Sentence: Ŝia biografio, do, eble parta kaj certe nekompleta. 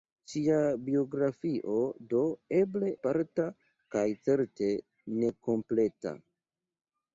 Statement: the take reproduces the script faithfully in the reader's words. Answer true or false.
true